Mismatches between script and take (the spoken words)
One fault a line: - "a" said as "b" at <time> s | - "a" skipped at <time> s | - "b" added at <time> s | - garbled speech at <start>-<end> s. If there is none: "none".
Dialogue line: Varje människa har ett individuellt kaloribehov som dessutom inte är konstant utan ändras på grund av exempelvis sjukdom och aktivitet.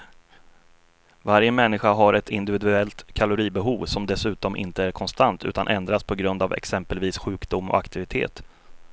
none